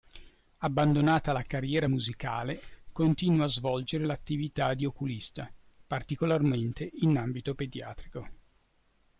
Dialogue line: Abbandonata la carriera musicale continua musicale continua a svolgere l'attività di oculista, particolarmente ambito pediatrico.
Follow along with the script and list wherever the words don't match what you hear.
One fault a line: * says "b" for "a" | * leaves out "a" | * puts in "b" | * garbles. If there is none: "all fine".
* leaves out "musicale continua"
* puts in "in"